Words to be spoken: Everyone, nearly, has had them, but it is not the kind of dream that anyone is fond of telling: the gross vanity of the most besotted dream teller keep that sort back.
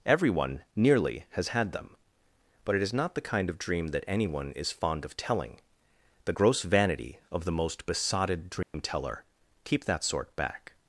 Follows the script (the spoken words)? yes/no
yes